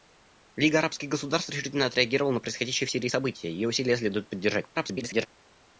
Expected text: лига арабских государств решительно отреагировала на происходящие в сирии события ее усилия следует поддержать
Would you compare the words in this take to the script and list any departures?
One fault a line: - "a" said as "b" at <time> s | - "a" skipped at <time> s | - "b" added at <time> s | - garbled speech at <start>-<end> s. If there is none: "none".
- garbled speech at 4.7-5.3 s